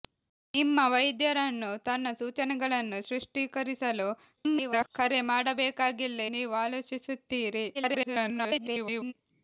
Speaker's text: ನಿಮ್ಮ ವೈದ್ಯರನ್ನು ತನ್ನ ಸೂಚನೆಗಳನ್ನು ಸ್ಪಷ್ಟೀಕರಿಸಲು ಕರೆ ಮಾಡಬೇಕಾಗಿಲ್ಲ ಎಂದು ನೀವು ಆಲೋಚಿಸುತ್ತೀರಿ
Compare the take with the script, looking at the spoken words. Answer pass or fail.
fail